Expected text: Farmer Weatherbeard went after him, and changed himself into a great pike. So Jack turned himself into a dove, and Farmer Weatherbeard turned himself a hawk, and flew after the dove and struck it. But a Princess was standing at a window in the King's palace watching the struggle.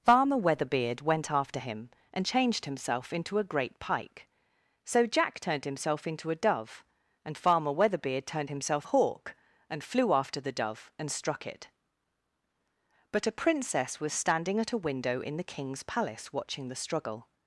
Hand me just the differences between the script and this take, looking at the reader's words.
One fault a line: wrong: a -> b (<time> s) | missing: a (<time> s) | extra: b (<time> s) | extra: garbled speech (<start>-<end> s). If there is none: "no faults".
no faults